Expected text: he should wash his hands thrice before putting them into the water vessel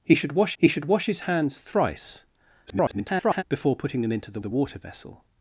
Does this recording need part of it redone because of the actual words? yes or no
yes